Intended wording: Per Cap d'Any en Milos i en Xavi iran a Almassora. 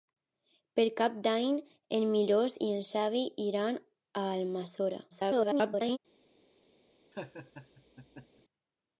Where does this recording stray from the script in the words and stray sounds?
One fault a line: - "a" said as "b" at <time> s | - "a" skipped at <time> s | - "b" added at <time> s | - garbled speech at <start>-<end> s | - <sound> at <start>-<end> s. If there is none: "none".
- garbled speech at 5.1-6.0 s
- laugh at 7.1-8.4 s